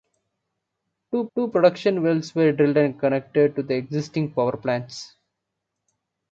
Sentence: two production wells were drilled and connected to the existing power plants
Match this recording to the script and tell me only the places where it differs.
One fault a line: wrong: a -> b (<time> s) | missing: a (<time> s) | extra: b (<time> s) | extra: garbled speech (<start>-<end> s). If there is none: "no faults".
extra: two (1.3 s)